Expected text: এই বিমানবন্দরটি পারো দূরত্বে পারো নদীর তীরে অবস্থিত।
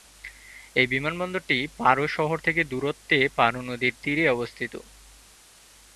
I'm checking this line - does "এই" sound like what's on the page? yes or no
yes